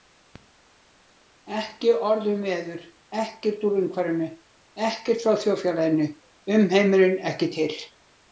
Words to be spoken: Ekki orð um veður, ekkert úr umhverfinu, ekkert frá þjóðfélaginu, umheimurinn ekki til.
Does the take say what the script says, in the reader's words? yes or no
yes